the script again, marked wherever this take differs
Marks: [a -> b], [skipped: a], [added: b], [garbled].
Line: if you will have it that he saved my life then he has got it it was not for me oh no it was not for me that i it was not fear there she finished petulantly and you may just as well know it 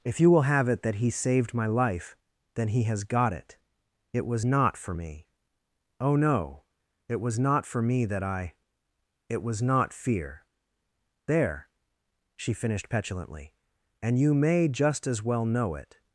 if you will have it that he saved my life then he has got it it was not for me oh no it was not for me that i it was not fear there she finished petulantly and you may just as well know it